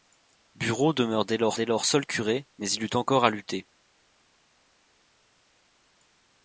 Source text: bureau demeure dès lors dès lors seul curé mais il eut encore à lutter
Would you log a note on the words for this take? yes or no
no